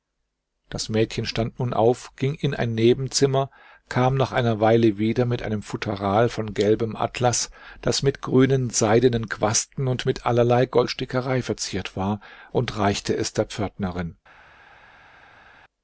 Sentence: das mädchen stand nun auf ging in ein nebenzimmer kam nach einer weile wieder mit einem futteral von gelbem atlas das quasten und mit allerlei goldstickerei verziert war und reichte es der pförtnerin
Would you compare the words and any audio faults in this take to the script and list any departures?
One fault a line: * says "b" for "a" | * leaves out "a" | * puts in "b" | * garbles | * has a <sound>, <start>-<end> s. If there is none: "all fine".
* puts in "mit grünen seidenen"